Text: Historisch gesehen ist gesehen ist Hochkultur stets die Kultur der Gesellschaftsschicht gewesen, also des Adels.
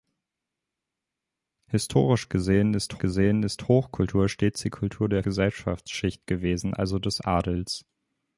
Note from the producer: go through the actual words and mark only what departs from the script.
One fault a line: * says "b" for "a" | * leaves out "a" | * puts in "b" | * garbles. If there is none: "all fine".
all fine